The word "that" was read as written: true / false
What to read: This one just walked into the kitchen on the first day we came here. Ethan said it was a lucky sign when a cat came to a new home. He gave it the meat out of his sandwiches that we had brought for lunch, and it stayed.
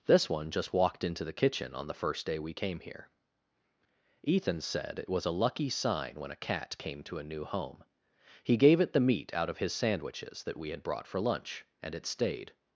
true